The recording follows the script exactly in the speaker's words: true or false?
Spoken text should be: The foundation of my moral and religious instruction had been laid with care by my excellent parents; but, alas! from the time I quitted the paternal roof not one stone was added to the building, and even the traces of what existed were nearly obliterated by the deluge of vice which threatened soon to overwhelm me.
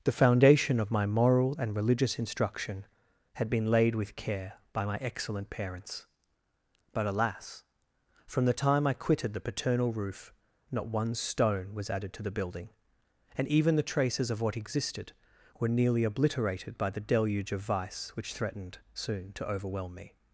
true